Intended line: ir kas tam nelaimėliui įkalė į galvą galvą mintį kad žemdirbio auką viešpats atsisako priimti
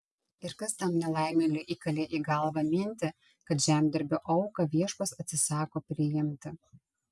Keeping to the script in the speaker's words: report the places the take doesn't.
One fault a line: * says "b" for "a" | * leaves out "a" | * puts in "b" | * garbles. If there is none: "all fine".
* leaves out "galvą"